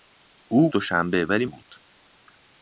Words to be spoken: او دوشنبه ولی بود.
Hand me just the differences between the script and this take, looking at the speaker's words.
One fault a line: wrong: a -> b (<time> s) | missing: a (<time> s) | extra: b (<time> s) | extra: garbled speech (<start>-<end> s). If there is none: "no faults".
no faults